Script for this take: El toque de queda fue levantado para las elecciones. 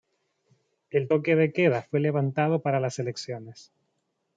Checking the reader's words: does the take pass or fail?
pass